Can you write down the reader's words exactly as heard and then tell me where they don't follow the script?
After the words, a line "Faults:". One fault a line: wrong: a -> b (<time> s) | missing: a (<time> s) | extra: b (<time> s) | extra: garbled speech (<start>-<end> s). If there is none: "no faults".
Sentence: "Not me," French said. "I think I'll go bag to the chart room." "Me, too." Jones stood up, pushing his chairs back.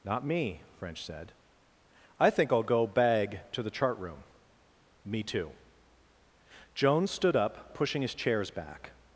"Not me," French said. "I think I'll go bag to the chart room." "Me, too." Jones stood up, pushing his chairs back.
Faults:
no faults